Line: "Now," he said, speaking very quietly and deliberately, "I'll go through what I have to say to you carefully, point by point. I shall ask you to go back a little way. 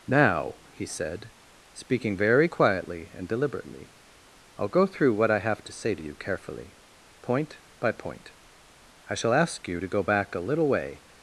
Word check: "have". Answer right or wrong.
right